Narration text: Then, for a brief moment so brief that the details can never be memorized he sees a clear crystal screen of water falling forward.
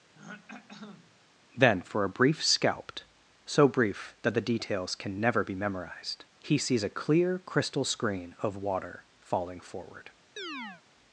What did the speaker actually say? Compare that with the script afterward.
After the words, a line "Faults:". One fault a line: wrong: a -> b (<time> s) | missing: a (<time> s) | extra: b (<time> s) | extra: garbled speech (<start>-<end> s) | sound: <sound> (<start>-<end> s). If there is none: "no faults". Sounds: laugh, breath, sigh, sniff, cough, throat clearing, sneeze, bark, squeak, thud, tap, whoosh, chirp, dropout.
Then, for a brief scalped so brief that the details can never be memorized he sees a clear crystal screen of water falling forward.
Faults:
sound: throat clearing (0.1-1.2 s)
wrong: moment -> scalped (2.4 s)
sound: chirp (10.4-10.8 s)